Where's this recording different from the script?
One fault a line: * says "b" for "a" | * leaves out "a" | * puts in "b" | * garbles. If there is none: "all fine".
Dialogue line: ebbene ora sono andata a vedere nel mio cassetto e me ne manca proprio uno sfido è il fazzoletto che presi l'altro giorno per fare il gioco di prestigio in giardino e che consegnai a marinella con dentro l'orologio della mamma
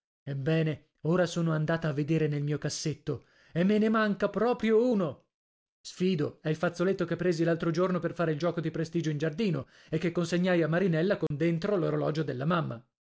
all fine